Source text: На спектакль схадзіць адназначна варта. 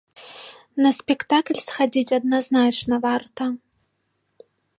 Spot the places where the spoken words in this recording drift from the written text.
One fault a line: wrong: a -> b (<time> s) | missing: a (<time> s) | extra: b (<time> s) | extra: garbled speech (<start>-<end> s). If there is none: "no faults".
no faults